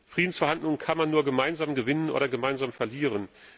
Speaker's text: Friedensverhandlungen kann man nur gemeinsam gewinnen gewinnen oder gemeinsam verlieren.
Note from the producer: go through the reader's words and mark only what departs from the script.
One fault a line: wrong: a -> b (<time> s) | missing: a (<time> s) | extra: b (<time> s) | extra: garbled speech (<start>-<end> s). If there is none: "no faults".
missing: gewinnen (2.1 s)